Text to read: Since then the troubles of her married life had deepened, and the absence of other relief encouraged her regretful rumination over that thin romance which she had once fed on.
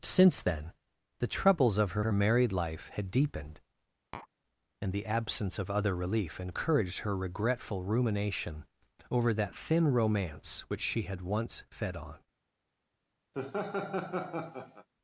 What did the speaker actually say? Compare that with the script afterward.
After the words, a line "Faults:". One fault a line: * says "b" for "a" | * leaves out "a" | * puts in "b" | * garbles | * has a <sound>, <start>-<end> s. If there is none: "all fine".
Since then the troubles of her her married life had deepened, and the absence of other relief encouraged her regretful rumination over that thin romance which she had once fed on.
Faults:
* puts in "her"
* has a tap, 4.1-4.3 s
* has a laugh, 13.3-14.9 s